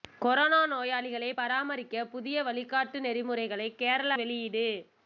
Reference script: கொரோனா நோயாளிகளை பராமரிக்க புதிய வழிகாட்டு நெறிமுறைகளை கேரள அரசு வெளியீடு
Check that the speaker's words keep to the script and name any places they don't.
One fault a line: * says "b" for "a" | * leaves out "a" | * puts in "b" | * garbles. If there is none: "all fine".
* leaves out "அரசு"